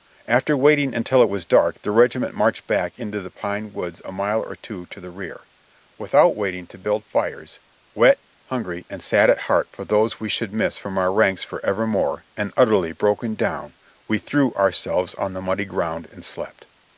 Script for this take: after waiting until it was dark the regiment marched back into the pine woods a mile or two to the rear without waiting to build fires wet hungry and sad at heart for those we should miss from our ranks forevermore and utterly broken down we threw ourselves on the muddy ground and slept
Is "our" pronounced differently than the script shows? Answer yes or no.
no